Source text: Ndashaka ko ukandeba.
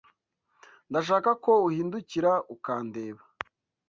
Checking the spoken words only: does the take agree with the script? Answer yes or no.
no